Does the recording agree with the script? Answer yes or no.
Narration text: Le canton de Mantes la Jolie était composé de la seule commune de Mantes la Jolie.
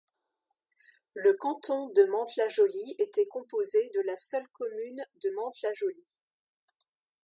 yes